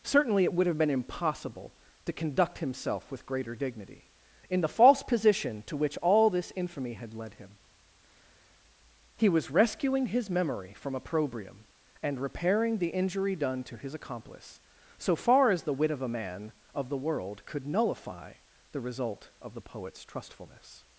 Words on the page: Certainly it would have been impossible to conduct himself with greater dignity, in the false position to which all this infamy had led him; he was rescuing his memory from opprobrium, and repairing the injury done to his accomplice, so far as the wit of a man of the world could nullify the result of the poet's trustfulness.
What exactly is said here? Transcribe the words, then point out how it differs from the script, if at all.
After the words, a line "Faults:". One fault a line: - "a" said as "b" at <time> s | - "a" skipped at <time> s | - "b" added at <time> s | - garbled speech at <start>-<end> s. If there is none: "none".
Certainly it would have been impossible to conduct himself with greater dignity, in the false position to which all this infamy had led him; he was rescuing his memory from opprobrium, and repairing the injury done to his accomplice, so far as the wit of a man of the world could nullify the result of the poet's trustfulness.
Faults:
none